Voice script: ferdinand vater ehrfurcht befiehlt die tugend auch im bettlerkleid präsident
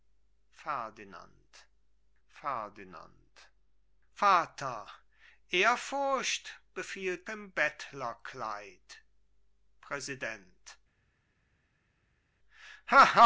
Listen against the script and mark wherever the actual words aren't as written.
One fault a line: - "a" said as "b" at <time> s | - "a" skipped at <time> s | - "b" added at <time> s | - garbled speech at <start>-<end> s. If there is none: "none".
- "ferdinand" added at 2.3 s
- "die tugend auch" skipped at 7.3 s